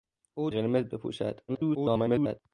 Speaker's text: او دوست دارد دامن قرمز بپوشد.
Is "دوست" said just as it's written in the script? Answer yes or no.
no